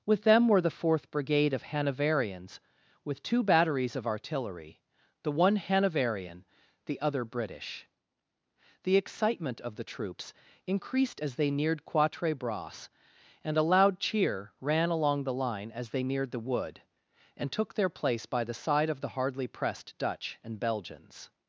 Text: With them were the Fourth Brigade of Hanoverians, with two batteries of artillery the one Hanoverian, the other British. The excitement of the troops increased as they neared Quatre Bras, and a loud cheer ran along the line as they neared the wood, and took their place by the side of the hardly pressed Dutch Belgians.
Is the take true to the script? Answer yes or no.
no